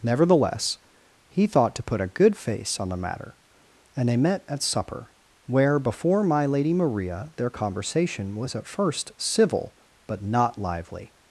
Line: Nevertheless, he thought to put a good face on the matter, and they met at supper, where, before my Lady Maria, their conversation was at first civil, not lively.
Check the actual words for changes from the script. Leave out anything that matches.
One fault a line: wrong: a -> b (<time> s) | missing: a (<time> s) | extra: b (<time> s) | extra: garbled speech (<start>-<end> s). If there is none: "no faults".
extra: but (10.1 s)